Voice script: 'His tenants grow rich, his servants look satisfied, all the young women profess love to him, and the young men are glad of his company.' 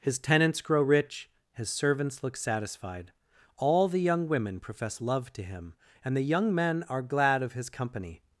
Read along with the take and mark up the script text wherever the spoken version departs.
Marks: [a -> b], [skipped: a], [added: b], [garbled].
'His tenants grow rich, his servants look satisfied, all the young women profess love to him, and the young men are glad of his company.'